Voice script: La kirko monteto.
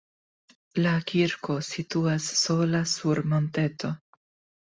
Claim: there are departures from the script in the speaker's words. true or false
true